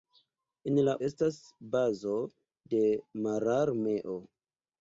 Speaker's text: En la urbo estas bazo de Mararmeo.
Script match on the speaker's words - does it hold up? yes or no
no